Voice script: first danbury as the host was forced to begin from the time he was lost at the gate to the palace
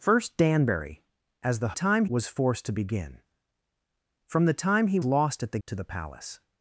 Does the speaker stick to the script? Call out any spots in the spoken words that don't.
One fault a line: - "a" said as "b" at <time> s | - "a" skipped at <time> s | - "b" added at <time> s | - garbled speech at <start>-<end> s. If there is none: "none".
- "host" said as "time" at 1.7 s
- "was" skipped at 5.0 s
- "gate" skipped at 5.6 s